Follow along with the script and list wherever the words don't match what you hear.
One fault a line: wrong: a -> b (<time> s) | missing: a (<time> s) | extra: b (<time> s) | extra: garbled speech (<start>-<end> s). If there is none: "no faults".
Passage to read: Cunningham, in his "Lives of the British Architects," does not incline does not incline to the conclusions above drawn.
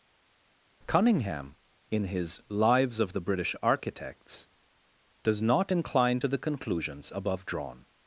missing: does not incline (6.2 s)